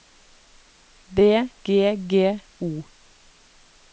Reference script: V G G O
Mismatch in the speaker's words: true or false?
false